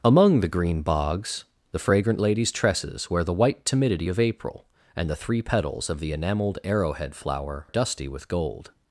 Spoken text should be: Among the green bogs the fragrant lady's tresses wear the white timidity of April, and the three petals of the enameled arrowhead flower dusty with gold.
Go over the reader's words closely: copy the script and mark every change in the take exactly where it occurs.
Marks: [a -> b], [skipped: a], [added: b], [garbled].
Among the green bogs the fragrant lady's tresses wear the white timidity of April, and the three petals of the enameled arrowhead flower dusty with gold.